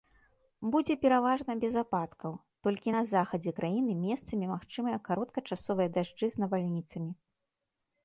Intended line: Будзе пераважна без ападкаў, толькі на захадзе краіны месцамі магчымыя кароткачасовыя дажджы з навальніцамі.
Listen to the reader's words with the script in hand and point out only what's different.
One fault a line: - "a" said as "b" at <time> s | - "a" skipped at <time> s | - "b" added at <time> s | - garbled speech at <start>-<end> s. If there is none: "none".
none